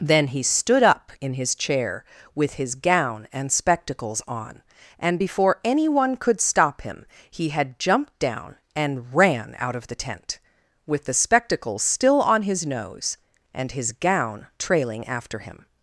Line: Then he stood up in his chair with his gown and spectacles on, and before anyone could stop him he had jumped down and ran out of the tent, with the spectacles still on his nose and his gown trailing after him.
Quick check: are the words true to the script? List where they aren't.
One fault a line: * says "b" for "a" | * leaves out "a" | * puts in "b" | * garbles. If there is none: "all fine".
all fine